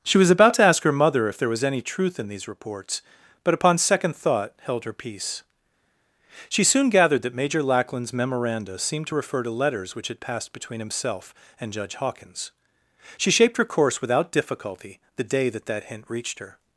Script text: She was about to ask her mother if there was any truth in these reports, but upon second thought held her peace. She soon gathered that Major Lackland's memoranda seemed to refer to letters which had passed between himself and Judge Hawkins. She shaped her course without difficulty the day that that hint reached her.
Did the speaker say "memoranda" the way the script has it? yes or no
yes